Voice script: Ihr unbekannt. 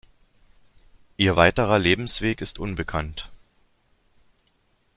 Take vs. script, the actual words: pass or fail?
fail